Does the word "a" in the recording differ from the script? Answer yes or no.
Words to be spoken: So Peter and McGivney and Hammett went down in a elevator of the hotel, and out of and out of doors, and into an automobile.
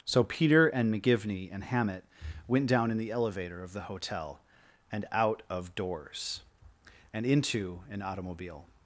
yes